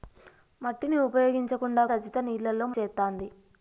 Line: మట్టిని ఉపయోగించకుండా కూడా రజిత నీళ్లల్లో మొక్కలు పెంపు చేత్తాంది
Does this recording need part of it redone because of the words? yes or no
yes